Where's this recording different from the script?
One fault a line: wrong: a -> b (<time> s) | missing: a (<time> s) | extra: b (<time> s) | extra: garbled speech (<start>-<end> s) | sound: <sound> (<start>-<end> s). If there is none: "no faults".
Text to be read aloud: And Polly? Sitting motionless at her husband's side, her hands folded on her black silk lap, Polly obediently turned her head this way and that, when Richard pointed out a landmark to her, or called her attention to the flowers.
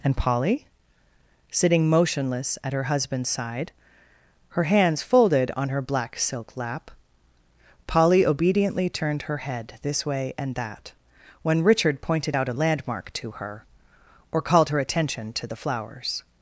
no faults